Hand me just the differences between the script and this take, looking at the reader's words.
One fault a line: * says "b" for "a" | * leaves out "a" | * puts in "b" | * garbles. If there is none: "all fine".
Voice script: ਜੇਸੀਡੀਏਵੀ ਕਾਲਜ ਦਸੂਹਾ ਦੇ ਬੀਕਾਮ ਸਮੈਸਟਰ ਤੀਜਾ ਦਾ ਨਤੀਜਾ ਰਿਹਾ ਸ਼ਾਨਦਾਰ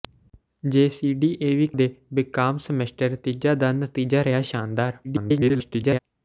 * leaves out "ਕਾਲਜ ਦਸੂਹਾ"
* garbles